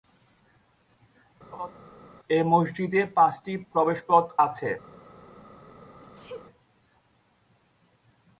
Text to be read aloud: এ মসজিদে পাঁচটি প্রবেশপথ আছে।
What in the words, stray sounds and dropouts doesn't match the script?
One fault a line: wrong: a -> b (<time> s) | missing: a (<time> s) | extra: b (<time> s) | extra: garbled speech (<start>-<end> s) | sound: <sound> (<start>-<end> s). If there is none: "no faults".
sound: laugh (1.5-1.7 s)
sound: sneeze (6.0-6.5 s)